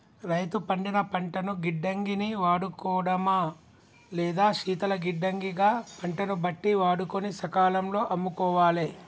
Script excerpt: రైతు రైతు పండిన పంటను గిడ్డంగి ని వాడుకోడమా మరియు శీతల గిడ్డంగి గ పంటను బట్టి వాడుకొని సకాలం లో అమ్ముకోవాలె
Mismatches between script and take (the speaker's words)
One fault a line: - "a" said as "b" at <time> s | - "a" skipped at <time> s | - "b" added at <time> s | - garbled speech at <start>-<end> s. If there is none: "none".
- "రైతు" skipped at 0.6 s
- "మరియు" said as "లేదా" at 4.1 s